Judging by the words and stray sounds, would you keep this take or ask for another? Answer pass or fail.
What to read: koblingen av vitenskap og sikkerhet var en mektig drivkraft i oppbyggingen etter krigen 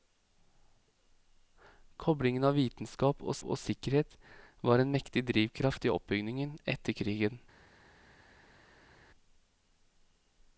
fail